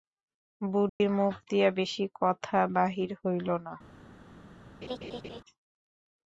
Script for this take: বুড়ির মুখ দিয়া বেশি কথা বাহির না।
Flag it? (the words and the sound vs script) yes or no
yes